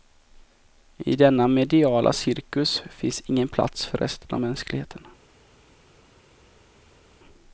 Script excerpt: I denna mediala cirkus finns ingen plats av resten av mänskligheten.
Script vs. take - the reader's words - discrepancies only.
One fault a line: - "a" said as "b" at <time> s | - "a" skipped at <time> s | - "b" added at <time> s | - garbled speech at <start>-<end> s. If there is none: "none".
- "av" said as "för" at 3.9 s